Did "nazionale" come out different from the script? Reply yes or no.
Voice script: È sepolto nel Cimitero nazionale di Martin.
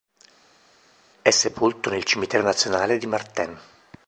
no